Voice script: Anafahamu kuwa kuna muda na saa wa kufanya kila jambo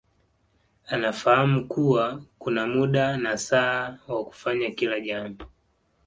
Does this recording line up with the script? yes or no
yes